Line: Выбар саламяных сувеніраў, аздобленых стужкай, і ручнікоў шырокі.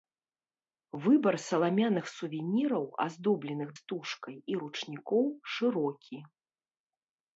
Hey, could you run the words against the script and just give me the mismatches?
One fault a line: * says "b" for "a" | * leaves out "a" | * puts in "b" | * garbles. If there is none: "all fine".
all fine